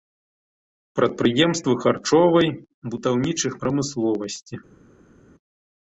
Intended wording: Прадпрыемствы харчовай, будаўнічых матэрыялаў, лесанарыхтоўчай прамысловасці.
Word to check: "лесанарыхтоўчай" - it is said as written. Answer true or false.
false